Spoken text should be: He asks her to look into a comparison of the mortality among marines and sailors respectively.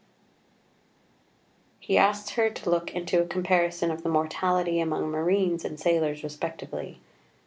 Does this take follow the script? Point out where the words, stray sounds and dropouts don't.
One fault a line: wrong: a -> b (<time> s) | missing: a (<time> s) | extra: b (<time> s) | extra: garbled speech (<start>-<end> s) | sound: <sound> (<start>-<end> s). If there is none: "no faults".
no faults